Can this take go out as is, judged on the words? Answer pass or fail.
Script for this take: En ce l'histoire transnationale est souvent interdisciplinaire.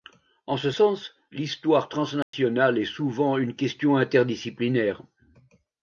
fail